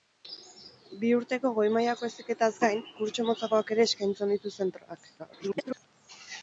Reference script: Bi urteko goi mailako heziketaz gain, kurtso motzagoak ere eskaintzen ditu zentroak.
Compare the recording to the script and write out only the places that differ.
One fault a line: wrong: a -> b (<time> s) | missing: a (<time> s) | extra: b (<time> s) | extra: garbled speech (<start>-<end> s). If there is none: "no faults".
extra: garbled speech (5.2-5.9 s)